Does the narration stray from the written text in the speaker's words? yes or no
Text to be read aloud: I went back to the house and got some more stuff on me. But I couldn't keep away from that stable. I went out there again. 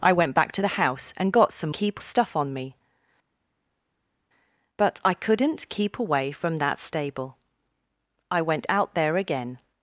yes